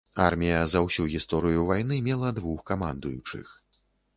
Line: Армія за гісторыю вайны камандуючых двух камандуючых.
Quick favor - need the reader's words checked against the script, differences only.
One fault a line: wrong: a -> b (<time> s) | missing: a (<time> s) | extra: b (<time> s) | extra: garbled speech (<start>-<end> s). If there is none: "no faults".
extra: ўсю (0.8 s)
wrong: камандуючых -> мела (2.1 s)